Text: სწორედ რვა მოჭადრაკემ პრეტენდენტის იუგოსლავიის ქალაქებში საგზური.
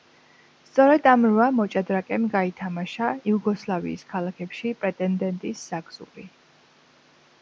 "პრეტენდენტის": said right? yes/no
no